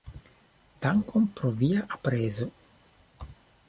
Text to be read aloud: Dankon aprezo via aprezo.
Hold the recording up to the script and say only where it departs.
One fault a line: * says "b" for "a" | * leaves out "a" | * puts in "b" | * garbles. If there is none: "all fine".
* says "pro" for "aprezo"